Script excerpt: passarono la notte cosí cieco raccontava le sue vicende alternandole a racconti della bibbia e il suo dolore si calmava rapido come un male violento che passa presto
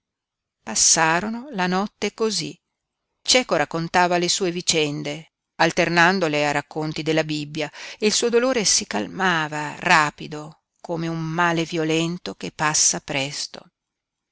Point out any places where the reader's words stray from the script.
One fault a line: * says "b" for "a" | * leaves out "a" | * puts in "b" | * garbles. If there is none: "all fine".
all fine